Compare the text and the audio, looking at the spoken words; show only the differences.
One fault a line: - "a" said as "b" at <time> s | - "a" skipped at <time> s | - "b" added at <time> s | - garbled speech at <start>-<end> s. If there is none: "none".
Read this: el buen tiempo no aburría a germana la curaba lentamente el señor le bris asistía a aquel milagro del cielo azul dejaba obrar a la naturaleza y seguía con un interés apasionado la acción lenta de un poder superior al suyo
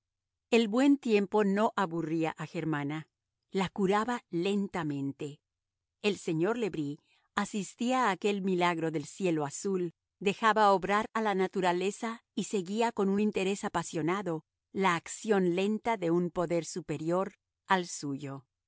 none